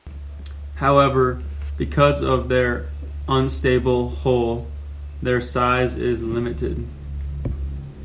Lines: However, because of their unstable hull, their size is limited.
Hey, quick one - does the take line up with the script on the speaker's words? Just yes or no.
yes